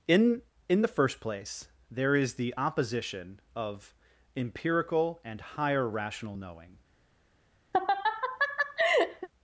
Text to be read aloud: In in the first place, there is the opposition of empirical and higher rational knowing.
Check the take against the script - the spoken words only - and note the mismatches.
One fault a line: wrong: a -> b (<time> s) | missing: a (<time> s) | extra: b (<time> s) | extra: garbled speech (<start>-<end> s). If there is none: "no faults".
no faults